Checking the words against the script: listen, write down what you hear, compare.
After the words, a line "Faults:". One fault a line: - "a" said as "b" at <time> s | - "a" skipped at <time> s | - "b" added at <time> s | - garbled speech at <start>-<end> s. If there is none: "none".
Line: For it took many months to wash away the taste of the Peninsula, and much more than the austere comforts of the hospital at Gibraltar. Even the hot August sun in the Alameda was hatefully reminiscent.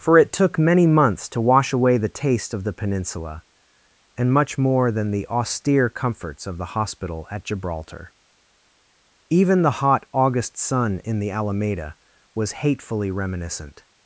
For it took many months to wash away the taste of the Peninsula, and much more than the austere comforts of the hospital at Gibraltar. Even the hot August sun in the Alameda was hatefully reminiscent.
Faults:
none